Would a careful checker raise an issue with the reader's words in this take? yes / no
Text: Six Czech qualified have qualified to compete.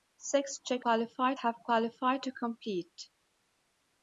no